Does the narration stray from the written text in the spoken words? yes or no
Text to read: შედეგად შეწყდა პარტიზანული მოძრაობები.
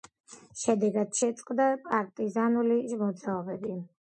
no